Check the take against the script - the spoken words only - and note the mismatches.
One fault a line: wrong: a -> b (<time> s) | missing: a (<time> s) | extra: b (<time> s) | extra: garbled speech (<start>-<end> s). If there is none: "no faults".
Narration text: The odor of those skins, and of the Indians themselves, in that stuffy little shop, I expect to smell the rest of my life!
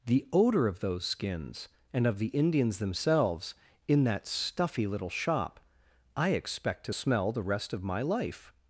no faults